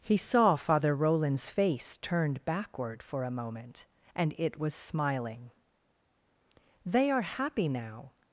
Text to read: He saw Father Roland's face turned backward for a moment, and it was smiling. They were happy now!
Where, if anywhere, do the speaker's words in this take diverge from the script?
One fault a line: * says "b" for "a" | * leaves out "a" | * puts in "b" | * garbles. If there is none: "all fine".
* says "are" for "were"